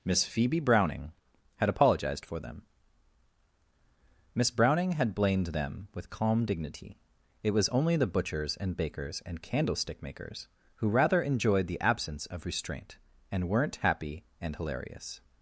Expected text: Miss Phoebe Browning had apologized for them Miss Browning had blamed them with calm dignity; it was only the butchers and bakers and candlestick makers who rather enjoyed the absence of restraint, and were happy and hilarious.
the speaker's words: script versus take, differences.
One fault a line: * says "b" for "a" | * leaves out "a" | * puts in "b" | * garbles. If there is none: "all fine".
* says "weren't" for "were"